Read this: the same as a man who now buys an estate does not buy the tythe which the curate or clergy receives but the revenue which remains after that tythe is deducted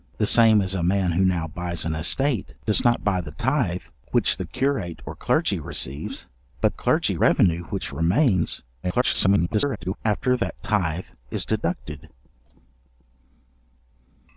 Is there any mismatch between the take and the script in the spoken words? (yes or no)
yes